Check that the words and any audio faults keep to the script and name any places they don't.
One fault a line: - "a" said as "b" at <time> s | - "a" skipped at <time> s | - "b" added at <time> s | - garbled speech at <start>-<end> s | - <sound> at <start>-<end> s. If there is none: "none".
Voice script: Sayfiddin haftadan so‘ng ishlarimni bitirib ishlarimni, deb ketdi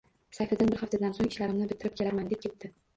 - "bir" added at 0.7 s
- "ishlarimni" said as "kelarman" at 2.0 s